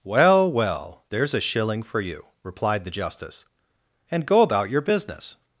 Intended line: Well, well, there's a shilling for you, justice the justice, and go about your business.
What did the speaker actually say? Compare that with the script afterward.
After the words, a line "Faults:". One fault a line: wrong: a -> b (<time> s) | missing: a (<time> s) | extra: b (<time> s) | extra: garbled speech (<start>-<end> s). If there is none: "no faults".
Well, well, there's a shilling for you, replied the justice, and go about your business.
Faults:
wrong: justice -> replied (2.4 s)